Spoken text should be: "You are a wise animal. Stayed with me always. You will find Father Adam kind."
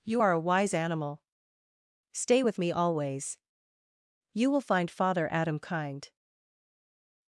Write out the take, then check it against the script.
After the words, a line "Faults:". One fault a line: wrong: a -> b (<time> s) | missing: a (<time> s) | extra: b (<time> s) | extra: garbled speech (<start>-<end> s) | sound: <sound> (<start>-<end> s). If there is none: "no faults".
"You are a wise animal. Stay with me always. You will find Father Adam kind."
Faults:
wrong: Stayed -> Stay (2.1 s)